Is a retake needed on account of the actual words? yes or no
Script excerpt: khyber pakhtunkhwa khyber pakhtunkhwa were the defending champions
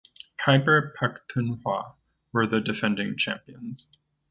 yes